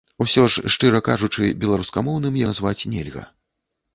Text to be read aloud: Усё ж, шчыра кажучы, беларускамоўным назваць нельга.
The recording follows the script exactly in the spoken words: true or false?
true